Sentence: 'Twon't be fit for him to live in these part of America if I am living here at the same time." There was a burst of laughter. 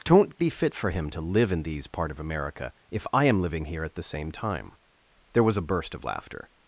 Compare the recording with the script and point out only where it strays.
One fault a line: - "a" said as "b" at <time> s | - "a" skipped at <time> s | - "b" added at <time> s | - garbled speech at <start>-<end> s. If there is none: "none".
none